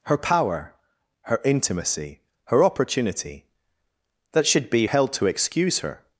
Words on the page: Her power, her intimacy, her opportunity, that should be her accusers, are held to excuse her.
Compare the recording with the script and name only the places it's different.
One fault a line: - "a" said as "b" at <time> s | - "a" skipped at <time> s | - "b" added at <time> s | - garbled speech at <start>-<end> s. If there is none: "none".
- "her accusers are" skipped at 4.9 s